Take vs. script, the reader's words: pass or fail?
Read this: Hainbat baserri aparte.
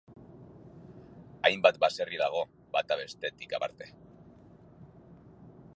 fail